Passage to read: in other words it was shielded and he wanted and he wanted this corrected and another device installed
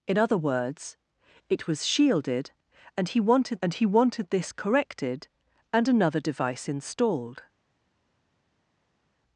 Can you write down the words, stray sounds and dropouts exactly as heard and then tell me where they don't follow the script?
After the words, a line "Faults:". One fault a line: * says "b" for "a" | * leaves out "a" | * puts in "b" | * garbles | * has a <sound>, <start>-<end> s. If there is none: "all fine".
in other words it was shielded and he wanted and he wanted this corrected and another device installed
Faults:
all fine